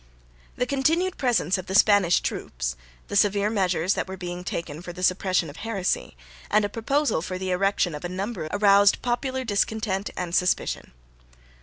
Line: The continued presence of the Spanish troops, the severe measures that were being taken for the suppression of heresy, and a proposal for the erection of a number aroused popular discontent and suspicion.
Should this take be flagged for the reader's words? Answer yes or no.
no